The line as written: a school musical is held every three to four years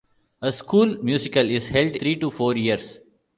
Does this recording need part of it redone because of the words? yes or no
yes